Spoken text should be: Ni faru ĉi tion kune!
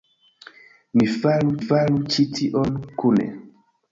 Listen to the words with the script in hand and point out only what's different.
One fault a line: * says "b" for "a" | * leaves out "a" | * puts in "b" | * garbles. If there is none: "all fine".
* puts in "faru"